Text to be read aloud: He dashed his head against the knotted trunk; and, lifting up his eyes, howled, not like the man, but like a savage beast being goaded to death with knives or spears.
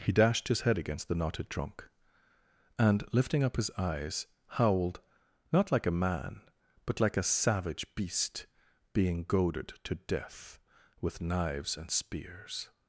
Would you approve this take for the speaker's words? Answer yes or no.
no